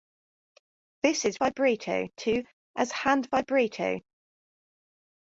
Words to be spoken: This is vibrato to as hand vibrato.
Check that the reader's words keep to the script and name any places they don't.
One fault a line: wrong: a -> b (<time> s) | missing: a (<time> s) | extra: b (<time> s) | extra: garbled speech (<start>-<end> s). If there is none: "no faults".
no faults